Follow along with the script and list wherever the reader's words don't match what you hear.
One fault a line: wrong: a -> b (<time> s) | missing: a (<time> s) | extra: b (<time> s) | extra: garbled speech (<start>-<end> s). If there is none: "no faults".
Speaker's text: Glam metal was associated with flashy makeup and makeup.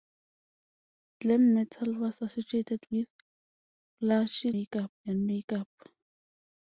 no faults